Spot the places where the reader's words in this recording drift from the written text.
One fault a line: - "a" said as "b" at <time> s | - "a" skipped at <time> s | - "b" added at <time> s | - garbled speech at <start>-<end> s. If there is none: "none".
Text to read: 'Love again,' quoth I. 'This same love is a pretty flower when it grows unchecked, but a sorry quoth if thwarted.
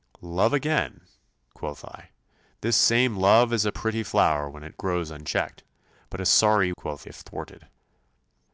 none